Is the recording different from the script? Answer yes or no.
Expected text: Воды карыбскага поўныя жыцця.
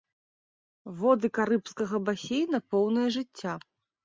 yes